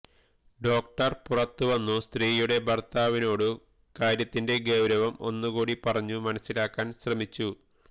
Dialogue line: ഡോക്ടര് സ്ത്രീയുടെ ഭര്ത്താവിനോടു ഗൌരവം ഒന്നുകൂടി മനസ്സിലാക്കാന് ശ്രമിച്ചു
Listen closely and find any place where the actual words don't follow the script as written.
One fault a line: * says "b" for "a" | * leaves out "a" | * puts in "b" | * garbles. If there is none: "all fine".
* puts in "പുറത്തുവന്നു"
* puts in "കാര്യത്തിന്റെ"
* puts in "പറഞ്ഞു"